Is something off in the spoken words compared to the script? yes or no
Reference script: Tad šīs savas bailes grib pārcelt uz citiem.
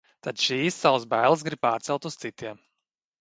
no